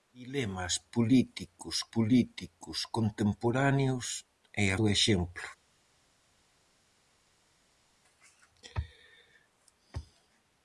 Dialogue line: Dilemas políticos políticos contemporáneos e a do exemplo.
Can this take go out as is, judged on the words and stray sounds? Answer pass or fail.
pass